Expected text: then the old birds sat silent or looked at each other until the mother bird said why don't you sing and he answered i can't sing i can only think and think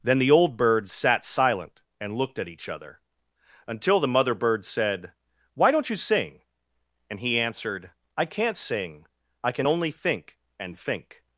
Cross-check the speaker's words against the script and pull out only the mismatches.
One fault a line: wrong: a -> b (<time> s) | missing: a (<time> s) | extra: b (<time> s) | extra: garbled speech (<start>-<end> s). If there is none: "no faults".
wrong: or -> and (2.0 s)